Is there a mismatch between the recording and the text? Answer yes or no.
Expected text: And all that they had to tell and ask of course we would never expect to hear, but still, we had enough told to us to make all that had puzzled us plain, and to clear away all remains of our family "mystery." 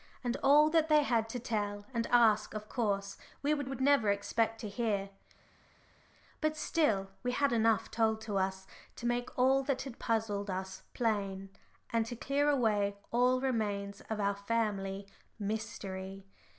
yes